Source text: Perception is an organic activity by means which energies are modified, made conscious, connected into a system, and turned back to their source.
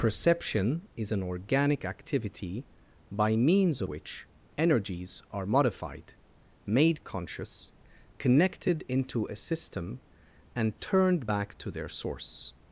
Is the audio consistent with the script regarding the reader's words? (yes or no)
yes